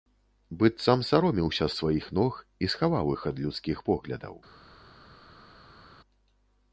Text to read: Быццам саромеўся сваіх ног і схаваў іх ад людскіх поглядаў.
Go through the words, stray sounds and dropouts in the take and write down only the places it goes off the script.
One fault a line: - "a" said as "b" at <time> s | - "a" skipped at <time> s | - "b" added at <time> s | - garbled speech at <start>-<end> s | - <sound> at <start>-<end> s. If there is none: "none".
none